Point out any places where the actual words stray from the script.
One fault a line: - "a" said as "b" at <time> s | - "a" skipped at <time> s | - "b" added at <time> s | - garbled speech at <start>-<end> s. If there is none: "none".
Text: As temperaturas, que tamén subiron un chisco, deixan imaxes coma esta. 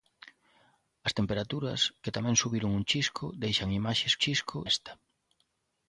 - "coma" said as "chisco" at 4.2 s